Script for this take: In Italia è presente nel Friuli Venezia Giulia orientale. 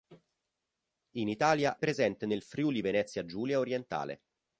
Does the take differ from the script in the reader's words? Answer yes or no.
yes